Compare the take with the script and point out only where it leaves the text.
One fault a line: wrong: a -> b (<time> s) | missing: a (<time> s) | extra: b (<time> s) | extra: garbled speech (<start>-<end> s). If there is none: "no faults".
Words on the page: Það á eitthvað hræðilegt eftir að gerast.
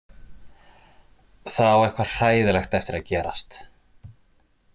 no faults